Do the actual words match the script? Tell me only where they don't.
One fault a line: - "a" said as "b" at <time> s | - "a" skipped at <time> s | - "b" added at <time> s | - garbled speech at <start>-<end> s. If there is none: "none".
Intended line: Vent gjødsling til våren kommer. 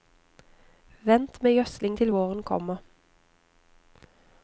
- "med" added at 1.4 s